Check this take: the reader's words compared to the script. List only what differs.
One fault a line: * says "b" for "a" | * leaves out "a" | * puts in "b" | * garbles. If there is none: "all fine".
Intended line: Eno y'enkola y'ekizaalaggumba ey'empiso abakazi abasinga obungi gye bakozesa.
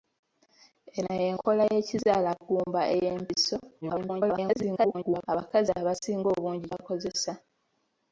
* garbles
* leaves out "gye"